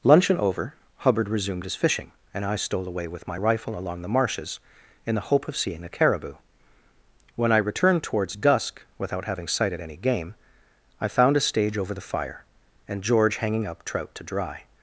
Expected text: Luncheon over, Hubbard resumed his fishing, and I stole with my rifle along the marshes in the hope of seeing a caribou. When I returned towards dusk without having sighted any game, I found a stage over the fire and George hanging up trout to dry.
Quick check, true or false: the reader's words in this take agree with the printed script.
false